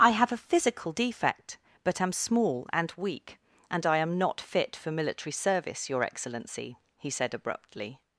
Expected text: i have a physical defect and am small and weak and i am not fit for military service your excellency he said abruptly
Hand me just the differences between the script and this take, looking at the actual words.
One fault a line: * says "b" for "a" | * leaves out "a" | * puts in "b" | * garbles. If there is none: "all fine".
* says "but" for "and"